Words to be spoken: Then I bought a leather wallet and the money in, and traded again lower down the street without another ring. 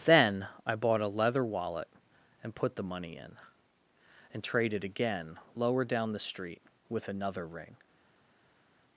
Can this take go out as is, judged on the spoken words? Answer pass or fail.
fail